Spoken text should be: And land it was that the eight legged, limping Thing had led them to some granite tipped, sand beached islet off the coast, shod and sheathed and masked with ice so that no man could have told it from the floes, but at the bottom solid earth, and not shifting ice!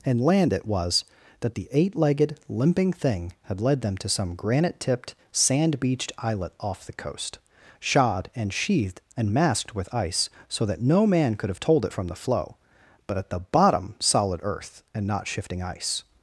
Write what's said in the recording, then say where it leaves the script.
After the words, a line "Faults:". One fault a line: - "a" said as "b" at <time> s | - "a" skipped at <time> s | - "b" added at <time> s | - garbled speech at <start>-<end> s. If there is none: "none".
And land it was that the eight legged, limping Thing had led them to some granite tipped, sand beached islet off the coast, shod and sheathed and masked with ice so that no man could have told it from the floe, but at the bottom solid earth, and not shifting ice!
Faults:
- "floes" said as "floe" at 12.1 s